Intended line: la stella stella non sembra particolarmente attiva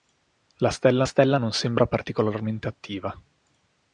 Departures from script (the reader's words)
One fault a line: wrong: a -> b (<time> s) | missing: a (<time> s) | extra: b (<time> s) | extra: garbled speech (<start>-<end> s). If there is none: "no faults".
no faults